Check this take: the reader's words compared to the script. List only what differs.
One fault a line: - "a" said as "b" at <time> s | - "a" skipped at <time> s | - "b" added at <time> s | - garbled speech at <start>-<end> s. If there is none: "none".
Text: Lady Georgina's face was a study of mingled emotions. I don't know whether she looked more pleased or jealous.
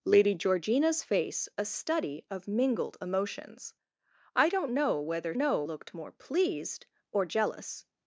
- "was" skipped at 1.5 s
- "she" said as "know" at 5.4 s